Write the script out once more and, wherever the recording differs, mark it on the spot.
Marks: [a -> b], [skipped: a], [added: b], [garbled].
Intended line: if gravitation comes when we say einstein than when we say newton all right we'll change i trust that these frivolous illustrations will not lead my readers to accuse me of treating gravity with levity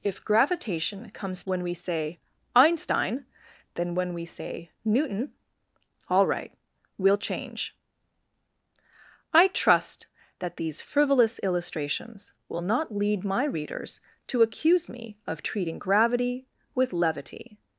if gravitation comes when we say einstein than when we say newton all right we'll change i trust that these frivolous illustrations will not lead my readers to accuse me of treating gravity with levity